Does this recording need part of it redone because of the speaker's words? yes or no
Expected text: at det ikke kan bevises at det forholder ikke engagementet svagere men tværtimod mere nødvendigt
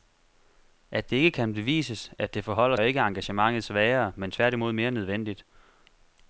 no